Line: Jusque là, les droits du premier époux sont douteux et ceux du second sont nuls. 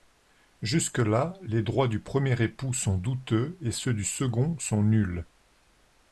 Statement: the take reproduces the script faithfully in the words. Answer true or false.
true